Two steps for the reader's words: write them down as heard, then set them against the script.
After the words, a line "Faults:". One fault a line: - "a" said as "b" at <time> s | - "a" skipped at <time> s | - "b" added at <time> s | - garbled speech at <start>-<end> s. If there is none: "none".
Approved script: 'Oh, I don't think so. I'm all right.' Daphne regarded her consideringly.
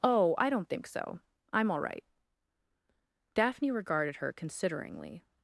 'Oh, I don't think so. I'm all right.' Daphne regarded her consideringly.
Faults:
none